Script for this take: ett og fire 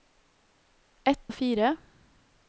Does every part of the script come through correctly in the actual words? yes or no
yes